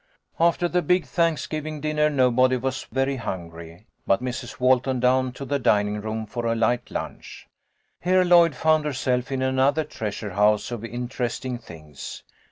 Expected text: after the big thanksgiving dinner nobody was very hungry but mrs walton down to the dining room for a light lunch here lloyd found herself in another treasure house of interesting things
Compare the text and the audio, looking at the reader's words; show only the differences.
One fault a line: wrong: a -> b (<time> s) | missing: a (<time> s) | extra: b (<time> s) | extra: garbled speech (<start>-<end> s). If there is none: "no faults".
no faults